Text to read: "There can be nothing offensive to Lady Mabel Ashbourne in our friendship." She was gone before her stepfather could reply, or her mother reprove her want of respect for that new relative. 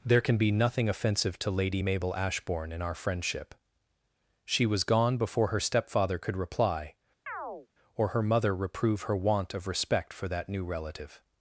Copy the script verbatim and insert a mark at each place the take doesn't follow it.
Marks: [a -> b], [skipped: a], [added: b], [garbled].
"There can be nothing offensive to Lady Mabel Ashbourne in our friendship." She was gone before her stepfather could reply, or her mother reprove her want of respect for that new relative.